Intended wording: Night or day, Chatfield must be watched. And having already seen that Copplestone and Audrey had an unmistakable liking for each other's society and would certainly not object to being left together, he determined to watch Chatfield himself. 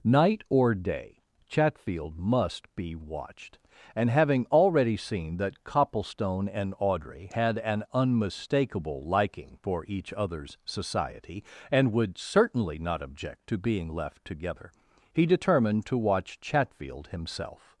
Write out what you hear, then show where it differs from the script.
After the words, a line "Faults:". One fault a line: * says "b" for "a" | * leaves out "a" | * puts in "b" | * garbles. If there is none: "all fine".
Night or day, Chatfield must be watched. And having already seen that Copplestone and Audrey had an unmistakable liking for each other's society and would certainly not object to being left together, he determined to watch Chatfield himself.
Faults:
all fine